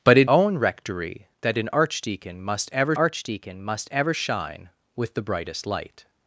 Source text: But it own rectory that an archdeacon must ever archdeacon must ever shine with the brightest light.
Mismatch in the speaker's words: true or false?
false